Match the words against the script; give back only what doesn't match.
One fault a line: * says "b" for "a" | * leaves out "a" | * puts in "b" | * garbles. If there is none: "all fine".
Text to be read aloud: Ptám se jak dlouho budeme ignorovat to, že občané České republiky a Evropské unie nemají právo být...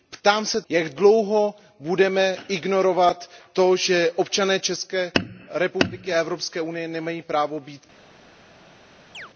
all fine